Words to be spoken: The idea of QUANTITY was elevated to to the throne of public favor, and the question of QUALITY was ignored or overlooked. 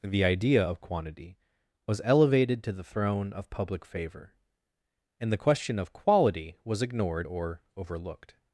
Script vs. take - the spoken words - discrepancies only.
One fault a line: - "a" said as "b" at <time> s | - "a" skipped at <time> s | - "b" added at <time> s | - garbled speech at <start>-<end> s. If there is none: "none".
- "to" skipped at 2.7 s